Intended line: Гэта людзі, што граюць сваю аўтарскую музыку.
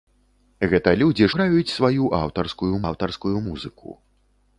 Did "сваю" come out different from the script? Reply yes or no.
no